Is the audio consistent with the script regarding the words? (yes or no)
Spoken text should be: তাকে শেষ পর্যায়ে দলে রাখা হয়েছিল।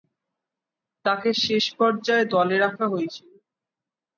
yes